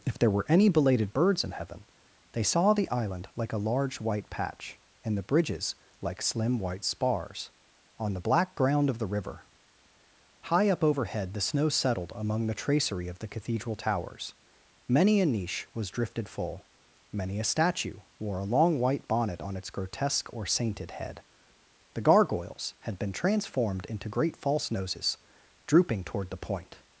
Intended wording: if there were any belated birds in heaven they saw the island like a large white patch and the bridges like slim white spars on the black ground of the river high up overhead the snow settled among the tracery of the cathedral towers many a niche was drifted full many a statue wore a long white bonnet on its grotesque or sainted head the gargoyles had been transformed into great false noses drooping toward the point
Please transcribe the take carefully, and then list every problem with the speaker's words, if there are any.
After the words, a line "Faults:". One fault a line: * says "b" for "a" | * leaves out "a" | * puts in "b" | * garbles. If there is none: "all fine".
if there were any belated birds in heaven they saw the island like a large white patch and the bridges like slim white spars on the black ground of the river high up overhead the snow settled among the tracery of the cathedral towers many a niche was drifted full many a statue wore a long white bonnet on its grotesque or sainted head the gargoyles had been transformed into great false noses drooping toward the point
Faults:
all fine